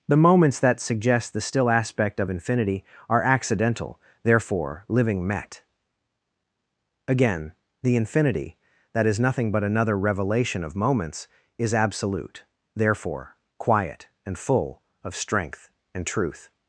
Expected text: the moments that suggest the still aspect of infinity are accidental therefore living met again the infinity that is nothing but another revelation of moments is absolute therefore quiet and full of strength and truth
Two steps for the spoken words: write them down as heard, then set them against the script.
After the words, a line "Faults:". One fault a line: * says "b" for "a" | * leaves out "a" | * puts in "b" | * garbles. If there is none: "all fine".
the moments that suggest the still aspect of infinity are accidental therefore living met again the infinity that is nothing but another revelation of moments is absolute therefore quiet and full of strength and truth
Faults:
all fine